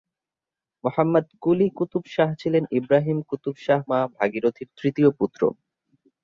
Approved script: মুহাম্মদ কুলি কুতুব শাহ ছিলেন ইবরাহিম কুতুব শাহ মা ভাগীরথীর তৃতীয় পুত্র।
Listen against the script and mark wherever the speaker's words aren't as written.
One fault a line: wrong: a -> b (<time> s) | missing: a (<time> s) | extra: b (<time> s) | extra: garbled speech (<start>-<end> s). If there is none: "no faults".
no faults